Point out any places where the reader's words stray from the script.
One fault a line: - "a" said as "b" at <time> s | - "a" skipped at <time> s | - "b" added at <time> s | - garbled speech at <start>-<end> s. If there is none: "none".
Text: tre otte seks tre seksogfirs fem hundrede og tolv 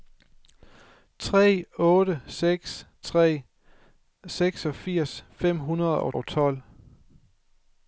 - "og" added at 6.1 s